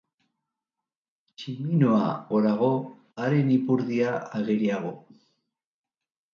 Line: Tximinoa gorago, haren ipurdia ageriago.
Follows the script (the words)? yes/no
yes